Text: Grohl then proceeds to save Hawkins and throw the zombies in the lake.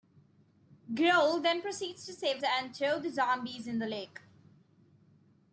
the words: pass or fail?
fail